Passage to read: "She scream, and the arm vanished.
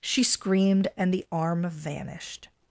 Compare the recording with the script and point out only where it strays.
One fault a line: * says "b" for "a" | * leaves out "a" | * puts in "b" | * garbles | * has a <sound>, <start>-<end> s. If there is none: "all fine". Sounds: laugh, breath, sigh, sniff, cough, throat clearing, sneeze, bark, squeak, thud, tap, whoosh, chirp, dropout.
* says "screamed" for "scream"